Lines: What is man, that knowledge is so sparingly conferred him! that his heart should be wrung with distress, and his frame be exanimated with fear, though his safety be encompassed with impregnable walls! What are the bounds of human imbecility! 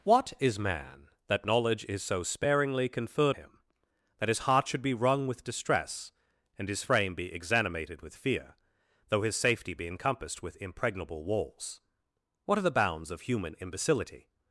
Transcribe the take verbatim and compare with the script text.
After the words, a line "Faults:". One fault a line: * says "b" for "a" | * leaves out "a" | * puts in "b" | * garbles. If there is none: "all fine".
What is man, that knowledge is so sparingly conferred him! that his heart should be wrung with distress, and his frame be exanimated with fear, though his safety be encompassed with impregnable walls! What are the bounds of human imbecility!
Faults:
all fine